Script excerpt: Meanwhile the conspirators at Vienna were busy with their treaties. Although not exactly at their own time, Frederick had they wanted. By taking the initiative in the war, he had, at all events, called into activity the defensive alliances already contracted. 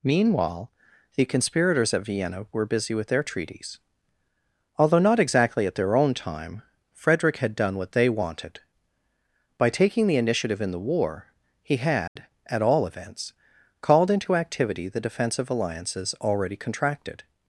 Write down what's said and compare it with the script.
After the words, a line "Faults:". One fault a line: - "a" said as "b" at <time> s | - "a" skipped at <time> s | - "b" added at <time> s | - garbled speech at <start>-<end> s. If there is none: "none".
Meanwhile the conspirators at Vienna were busy with their treaties. Although not exactly at their own time, Frederick had done what they wanted. By taking the initiative in the war, he had, at all events, called into activity the defensive alliances already contracted.
Faults:
- "done what" added at 7.5 s